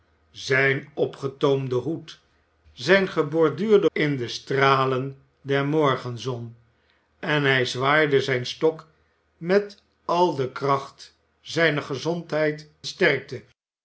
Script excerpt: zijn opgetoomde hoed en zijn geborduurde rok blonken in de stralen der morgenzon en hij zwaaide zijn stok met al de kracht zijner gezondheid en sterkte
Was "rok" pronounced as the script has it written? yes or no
no